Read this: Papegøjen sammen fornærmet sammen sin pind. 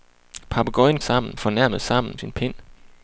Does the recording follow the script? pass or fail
pass